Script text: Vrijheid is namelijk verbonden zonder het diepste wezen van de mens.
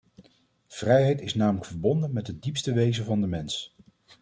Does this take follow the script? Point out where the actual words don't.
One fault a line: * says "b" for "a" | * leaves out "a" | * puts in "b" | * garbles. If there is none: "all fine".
* says "met" for "zonder"